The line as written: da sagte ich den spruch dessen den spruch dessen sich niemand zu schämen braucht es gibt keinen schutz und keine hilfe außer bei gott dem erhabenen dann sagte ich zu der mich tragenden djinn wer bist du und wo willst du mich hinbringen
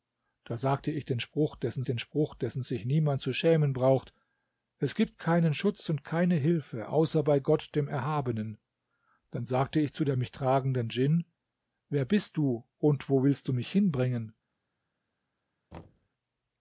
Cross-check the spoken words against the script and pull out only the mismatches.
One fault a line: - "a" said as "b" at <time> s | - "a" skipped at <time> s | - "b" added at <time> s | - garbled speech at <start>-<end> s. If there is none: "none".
none